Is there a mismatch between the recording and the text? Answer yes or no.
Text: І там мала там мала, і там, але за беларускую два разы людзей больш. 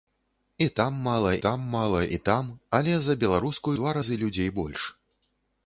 no